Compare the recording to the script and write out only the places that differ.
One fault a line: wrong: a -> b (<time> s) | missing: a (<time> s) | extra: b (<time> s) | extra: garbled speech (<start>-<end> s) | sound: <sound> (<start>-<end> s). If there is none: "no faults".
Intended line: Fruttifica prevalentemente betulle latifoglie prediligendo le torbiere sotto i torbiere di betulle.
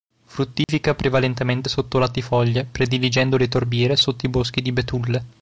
sound: dropout (0.6-0.7 s)
wrong: betulle -> sotto (1.7 s)
wrong: torbiere -> boschi (4.3 s)